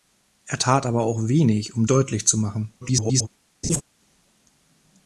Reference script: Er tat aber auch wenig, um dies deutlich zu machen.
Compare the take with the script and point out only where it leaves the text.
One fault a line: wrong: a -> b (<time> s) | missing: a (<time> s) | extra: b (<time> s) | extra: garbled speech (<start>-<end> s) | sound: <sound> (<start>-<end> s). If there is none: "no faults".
missing: dies (1.9 s)
extra: garbled speech (2.8-3.3 s)
sound: laugh (3.6-3.8 s)